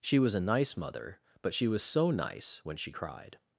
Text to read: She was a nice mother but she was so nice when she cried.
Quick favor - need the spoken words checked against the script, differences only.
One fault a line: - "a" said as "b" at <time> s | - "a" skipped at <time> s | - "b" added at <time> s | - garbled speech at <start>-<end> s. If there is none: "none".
none